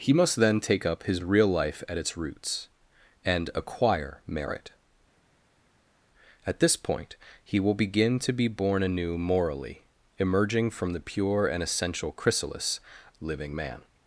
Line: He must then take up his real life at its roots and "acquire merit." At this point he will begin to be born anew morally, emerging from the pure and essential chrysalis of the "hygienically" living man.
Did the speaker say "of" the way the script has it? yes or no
no